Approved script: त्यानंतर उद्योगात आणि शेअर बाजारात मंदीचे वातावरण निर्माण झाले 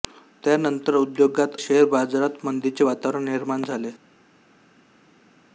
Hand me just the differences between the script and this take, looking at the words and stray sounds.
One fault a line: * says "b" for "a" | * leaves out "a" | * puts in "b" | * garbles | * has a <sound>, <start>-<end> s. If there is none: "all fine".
* leaves out "आणि"